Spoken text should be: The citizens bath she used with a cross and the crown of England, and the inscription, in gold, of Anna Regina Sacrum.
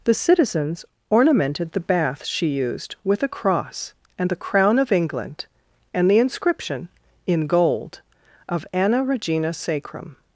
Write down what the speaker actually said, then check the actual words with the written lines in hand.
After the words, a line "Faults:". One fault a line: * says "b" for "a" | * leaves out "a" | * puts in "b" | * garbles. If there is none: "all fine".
The citizens ornamented the bath she used with a cross and the crown of England, and the inscription, in gold, of Anna Regina Sacrum.
Faults:
* puts in "ornamented the"